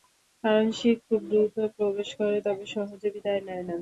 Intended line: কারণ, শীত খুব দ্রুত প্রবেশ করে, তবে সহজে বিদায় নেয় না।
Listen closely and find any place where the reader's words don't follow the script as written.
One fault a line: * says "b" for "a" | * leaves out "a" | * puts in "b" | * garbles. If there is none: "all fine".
all fine